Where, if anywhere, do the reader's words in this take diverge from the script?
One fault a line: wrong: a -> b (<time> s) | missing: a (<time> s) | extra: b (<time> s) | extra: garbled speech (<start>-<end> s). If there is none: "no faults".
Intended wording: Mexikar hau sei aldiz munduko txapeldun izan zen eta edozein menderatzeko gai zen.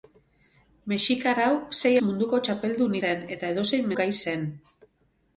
missing: aldiz (1.9 s)
missing: izan (3.0 s)
missing: menderatzeko (3.9 s)